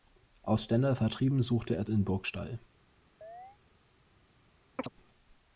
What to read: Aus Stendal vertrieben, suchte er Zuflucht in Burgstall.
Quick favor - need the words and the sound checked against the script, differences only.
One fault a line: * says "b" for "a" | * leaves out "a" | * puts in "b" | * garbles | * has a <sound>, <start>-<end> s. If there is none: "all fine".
* leaves out "Zuflucht"
* has a chirp, 3.2-3.6 s
* has a chirp, 4.8-4.9 s